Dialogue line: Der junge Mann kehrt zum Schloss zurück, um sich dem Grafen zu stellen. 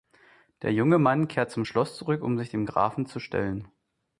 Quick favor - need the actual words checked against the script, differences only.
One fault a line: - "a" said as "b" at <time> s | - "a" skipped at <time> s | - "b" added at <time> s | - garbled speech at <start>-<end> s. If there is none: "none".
none